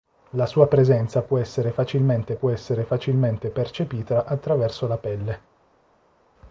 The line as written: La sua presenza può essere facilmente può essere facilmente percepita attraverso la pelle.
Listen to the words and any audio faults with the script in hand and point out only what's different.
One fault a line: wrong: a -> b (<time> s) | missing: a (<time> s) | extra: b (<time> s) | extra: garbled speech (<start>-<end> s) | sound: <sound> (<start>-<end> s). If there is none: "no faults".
no faults